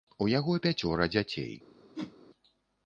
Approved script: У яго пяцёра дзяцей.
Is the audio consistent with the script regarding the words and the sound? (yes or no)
no